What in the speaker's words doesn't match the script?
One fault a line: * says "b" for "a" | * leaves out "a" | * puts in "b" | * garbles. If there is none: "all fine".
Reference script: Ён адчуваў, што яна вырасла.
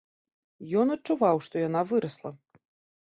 all fine